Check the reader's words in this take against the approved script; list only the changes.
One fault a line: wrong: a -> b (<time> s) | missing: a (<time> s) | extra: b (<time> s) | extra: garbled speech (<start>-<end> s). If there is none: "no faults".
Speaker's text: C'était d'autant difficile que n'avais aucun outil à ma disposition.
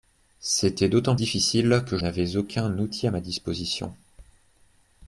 no faults